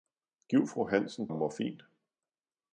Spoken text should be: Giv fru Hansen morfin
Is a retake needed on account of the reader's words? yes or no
no